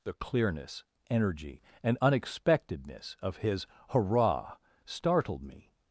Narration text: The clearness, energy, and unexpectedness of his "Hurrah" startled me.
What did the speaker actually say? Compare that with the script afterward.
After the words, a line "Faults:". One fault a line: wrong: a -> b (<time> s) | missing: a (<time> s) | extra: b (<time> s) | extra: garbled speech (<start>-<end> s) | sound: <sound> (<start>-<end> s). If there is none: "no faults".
The clearness, energy, and unexpectedness of his "Hurrah" startled me.
Faults:
no faults